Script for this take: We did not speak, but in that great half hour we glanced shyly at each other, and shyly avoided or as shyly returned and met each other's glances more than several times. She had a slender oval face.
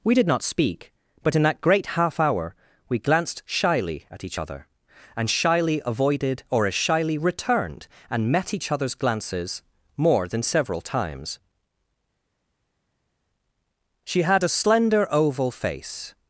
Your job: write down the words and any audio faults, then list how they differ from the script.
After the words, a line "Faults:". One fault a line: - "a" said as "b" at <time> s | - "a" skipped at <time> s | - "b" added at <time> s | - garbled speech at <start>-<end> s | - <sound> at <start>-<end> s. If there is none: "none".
We did not speak, but in that great half hour we glanced shyly at each other, and shyly avoided or as shyly returned and met each other's glances more than several times. She had a slender oval face.
Faults:
none